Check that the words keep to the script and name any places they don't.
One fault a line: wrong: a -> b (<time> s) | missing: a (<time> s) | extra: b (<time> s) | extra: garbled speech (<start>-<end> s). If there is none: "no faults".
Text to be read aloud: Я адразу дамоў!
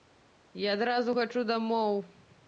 extra: хачу (1.2 s)